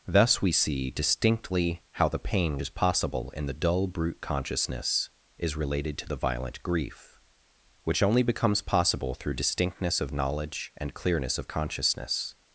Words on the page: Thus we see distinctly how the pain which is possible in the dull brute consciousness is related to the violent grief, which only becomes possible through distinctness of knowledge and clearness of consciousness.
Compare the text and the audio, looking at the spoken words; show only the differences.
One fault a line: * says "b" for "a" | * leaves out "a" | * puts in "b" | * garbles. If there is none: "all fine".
* leaves out "which"